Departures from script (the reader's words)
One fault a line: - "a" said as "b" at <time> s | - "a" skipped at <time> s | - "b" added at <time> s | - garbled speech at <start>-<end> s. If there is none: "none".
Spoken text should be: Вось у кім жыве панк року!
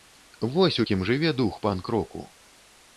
- "дух" added at 1.4 s